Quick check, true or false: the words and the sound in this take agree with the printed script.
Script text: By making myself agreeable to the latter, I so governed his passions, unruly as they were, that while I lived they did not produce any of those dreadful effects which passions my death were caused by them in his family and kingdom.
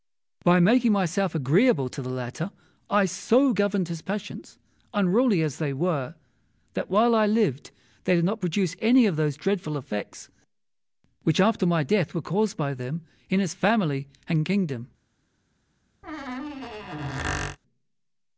false